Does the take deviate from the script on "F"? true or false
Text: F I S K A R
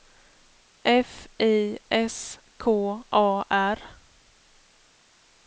false